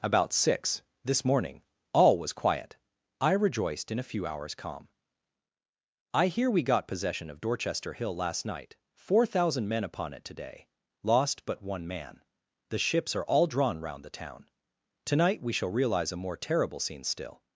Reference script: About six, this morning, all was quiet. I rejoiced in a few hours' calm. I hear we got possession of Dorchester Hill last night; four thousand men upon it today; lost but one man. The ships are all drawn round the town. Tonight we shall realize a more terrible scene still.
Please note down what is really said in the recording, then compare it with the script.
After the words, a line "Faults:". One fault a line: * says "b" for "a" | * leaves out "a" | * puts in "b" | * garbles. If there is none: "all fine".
About six, this morning, all was quiet. I rejoiced in a few hours' calm. I hear we got possession of Dorchester Hill last night; four thousand men upon it today; lost but one man. The ships are all drawn round the town. Tonight we shall realize a more terrible scene still.
Faults:
all fine